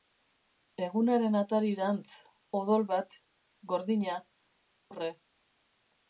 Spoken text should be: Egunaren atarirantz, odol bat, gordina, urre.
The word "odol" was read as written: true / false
true